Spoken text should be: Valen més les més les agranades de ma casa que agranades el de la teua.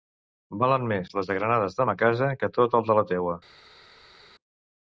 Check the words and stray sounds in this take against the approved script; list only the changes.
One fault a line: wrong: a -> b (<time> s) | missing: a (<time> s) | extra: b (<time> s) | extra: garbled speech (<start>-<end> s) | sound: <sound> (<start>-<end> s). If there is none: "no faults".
missing: més les (1.3 s)
wrong: agranades -> tot (2.6 s)